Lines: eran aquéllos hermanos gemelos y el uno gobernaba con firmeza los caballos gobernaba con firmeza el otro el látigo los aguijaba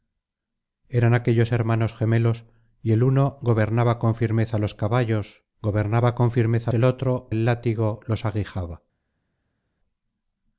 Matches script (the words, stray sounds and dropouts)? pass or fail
pass